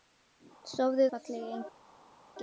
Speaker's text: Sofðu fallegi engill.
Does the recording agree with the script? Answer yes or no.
yes